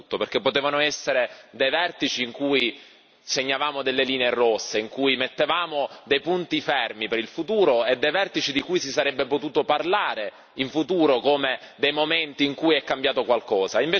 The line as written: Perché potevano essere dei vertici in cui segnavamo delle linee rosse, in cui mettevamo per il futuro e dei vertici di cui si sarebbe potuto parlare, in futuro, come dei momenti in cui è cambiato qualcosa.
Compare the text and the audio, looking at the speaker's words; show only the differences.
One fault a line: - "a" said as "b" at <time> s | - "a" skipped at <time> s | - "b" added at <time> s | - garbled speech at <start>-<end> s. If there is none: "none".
- "dei punti fermi" added at 6.0 s